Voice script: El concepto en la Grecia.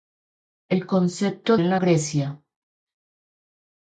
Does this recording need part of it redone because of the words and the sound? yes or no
no